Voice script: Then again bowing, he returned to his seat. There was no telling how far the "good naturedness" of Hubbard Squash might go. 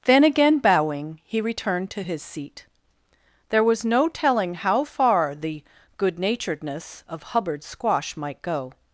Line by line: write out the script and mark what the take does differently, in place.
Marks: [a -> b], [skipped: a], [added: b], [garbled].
Then again bowing, he returned to his seat. There was no telling how far the "good naturedness" of Hubbard Squash might go.